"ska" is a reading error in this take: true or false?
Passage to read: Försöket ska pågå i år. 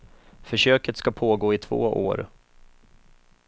false